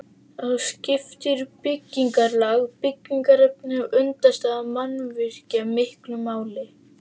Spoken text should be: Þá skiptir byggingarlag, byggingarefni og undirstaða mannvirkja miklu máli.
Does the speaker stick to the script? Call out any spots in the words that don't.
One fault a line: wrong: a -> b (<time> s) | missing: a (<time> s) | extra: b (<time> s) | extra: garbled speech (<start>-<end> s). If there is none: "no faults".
no faults